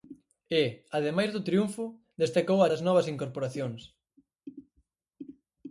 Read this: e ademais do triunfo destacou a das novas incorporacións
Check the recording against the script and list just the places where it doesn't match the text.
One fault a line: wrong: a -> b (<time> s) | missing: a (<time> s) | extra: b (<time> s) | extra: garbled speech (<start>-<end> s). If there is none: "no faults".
no faults